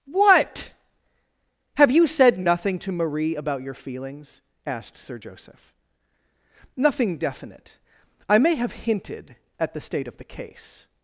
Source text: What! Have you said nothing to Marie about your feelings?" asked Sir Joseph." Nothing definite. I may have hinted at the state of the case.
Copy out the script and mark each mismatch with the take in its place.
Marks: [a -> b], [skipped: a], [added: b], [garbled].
What! Have you said nothing to Marie about your feelings?" asked Sir Joseph." Nothing definite. I may have hinted at the state of the case.